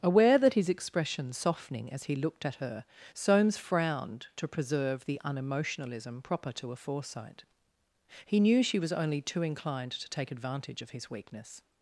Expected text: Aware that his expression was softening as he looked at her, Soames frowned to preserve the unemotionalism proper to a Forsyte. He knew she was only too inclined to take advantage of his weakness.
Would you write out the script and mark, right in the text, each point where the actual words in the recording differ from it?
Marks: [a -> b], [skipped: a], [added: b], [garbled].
Aware that his expression [skipped: was] softening as he looked at her, Soames frowned to preserve the unemotionalism proper to a Forsyte. He knew she was only too inclined to take advantage of his weakness.